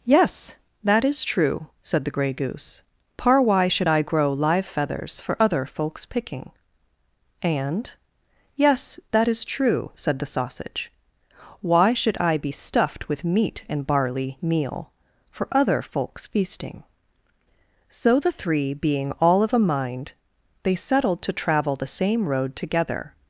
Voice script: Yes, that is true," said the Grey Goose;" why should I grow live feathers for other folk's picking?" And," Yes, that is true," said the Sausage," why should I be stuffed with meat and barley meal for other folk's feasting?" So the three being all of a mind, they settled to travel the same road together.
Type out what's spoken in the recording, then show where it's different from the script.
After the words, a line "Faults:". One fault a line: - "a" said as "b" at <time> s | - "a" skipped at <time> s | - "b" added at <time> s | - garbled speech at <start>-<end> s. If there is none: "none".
Yes, that is true," said the Grey Goose;" par why should I grow live feathers for other folk's picking?" And," Yes, that is true," said the Sausage," why should I be stuffed with meat and barley meal for other folk's feasting?" So the three being all of a mind, they settled to travel the same road together.
Faults:
- "par" added at 3.2 s